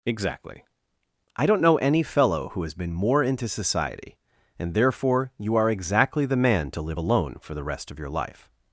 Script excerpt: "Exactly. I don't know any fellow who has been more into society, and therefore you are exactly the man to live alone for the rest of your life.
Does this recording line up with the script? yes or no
yes